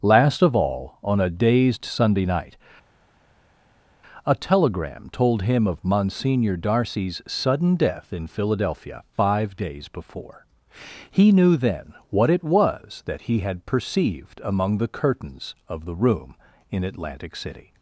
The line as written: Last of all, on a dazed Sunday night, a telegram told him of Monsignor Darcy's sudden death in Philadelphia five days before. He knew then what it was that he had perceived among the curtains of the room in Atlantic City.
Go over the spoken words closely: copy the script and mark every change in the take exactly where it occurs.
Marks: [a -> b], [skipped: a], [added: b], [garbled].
Last of all, on a dazed Sunday night, a telegram told him of Monsignor Darcy's sudden death in Philadelphia five days before. He knew then what it was that he had perceived among the curtains of the room in Atlantic City.